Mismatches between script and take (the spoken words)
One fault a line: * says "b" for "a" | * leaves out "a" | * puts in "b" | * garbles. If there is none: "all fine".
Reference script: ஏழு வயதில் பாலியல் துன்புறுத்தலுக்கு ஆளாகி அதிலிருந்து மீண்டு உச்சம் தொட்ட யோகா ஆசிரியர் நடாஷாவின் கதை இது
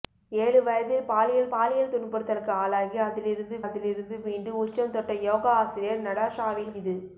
* puts in "பாலியல்"
* puts in "அதிலிருந்து"
* leaves out "கதை"